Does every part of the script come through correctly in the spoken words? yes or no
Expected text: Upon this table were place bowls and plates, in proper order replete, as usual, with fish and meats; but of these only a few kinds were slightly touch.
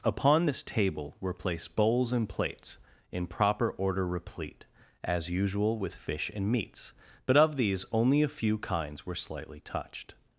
no